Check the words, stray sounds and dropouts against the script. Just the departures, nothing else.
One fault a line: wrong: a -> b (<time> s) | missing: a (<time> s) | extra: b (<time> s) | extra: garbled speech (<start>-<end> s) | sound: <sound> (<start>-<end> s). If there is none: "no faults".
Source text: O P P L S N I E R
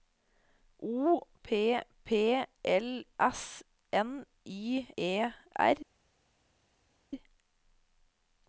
no faults